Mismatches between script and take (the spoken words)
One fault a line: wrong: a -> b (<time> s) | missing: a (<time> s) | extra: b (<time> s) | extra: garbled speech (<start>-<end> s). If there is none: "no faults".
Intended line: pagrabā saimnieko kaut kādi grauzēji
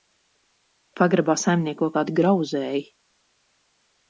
missing: kaut (1.9 s)